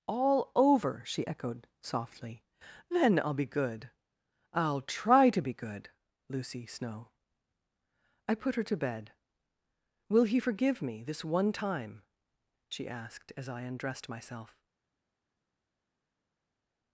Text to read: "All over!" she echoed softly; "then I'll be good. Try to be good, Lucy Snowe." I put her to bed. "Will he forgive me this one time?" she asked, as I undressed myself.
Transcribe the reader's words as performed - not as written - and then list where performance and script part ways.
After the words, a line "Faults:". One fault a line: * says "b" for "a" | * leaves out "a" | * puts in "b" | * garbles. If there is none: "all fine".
"All over!" she echoed softly; "then I'll be good. I'll try to be good, Lucy Snowe." I put her to bed. "Will he forgive me this one time?" she asked, as I undressed myself.
Faults:
* puts in "I'll"